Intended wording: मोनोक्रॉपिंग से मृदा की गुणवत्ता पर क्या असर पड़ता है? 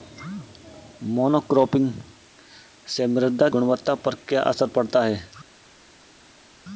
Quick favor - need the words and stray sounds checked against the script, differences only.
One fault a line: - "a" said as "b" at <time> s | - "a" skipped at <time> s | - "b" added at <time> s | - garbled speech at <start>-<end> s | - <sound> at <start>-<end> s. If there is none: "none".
- "की" skipped at 3.5 s